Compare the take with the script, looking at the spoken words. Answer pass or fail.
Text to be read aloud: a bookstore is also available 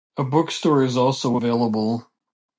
pass